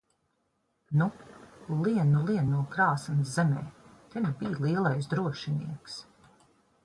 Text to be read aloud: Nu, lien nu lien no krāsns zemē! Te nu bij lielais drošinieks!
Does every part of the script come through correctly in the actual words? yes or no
yes